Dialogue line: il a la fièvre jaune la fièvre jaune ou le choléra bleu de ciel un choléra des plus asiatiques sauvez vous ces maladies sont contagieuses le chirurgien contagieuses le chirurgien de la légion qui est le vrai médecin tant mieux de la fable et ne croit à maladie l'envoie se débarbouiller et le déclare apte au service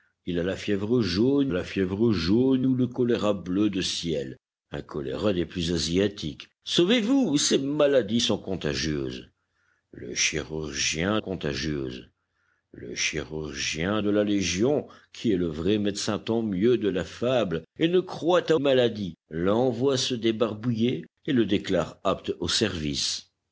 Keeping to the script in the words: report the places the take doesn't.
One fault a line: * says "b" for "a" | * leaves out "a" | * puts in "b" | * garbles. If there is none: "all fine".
all fine